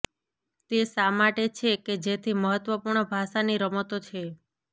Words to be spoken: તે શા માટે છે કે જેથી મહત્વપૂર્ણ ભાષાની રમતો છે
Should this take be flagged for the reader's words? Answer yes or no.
no